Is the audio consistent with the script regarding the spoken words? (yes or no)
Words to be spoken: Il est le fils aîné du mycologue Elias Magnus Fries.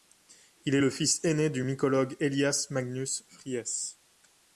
yes